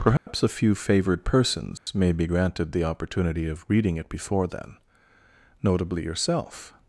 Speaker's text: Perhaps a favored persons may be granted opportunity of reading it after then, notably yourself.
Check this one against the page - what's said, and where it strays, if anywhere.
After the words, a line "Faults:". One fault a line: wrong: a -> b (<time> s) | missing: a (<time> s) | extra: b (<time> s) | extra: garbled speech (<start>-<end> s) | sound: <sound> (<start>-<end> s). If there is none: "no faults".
Perhaps a few favored persons may be granted the opportunity of reading it before then, notably yourself.
Faults:
sound: dropout (0.2-0.3 s)
extra: few (0.5 s)
sound: dropout (1.8-1.9 s)
extra: the (2.7 s)
wrong: after -> before (4.1 s)